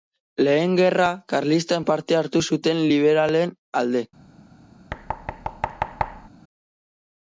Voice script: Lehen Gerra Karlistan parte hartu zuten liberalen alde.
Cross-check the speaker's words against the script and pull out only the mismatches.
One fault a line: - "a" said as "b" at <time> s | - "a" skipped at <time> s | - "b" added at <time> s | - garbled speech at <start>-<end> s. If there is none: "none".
none